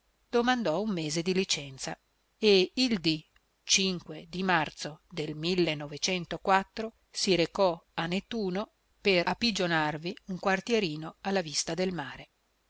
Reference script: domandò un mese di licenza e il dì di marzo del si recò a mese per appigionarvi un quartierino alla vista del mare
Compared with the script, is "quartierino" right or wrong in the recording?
right